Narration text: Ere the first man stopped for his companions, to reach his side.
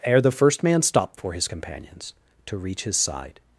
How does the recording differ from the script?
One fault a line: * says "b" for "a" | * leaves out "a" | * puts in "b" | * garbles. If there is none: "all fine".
all fine